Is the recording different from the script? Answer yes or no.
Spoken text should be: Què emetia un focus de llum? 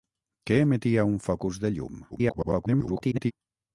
yes